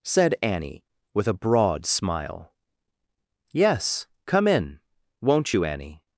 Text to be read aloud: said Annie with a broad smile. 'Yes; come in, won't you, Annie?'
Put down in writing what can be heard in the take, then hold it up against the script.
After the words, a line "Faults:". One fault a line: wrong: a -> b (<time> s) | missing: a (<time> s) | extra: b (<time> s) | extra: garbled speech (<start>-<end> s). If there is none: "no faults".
said Annie with a broad smile. 'Yes; come in, won't you, Annie?'
Faults:
no faults